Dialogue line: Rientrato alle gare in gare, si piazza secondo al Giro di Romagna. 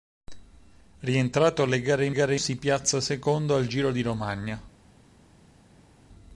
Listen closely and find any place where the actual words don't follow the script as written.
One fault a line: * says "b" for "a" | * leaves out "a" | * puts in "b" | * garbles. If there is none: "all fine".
all fine